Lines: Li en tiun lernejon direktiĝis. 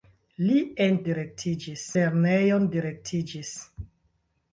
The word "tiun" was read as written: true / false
false